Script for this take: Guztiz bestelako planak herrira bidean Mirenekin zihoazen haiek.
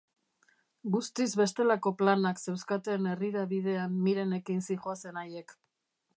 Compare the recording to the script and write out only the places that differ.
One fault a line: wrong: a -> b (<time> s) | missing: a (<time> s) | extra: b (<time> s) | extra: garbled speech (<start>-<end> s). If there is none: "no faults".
extra: zeuzkaten (2.5 s)